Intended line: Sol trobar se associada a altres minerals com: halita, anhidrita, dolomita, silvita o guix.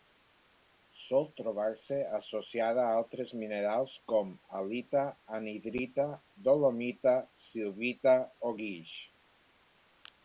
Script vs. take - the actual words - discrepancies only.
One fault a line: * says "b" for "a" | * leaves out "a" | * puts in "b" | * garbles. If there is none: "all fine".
all fine